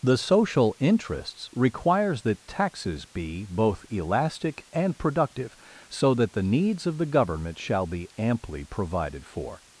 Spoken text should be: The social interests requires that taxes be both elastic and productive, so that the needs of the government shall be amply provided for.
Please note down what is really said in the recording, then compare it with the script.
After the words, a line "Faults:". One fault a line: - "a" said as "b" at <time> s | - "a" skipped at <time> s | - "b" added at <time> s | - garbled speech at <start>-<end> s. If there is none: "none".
The social interests requires that taxes be both elastic and productive, so that the needs of the government shall be amply provided for.
Faults:
none